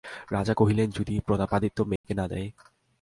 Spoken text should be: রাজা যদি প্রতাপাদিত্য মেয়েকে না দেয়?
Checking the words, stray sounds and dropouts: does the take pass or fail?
fail